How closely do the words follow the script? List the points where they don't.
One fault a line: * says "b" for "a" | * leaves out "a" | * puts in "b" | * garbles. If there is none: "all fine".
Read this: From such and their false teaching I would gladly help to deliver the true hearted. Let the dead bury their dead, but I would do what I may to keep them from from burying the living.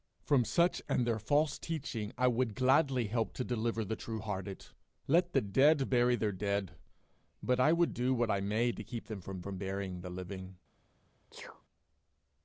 all fine